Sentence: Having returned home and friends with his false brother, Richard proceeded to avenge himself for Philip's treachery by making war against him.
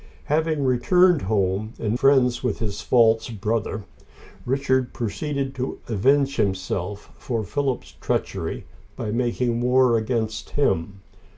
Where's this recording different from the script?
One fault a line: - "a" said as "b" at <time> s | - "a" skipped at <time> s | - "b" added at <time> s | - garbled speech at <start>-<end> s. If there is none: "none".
none